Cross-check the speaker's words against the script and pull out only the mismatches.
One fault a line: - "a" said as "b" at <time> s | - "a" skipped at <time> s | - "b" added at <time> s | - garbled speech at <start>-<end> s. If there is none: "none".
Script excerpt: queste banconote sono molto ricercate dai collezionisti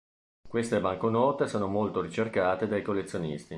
none